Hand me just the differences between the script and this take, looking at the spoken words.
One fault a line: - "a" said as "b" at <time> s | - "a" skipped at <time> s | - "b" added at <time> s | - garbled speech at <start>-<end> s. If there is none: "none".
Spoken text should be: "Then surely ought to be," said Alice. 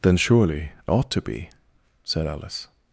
none